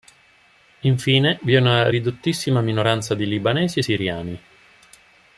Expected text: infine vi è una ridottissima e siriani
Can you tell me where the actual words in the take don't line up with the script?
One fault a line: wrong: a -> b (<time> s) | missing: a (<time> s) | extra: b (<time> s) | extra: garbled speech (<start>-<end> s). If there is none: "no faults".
extra: minoranza di libanesi (2.6 s)